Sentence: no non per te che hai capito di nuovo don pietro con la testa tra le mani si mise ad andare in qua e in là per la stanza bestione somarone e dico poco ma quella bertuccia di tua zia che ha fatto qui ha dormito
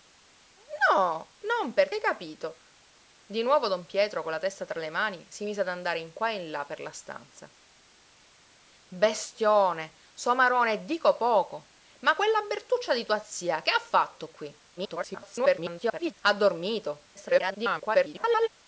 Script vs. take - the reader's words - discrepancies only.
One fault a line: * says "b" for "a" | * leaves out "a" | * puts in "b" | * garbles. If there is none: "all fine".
* leaves out "te che"
* garbles
* garbles